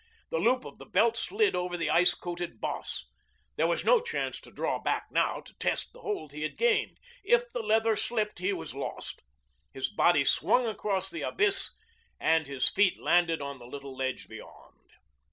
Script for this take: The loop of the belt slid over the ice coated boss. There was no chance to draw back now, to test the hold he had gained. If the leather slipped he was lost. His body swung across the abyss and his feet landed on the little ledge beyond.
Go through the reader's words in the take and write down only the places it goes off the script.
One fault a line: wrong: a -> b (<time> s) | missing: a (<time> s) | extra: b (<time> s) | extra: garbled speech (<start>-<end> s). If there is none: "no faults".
no faults